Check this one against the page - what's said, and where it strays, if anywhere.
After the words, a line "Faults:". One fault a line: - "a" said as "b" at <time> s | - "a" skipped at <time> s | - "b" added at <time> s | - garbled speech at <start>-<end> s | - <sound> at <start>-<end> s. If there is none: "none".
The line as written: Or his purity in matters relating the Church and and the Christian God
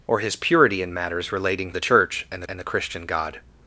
Or his purity in matters relating the Church and and the Christian God
Faults:
none